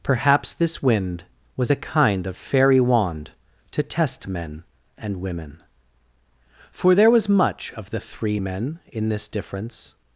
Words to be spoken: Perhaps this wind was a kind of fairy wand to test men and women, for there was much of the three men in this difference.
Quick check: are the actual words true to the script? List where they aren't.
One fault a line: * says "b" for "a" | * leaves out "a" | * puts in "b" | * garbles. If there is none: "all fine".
all fine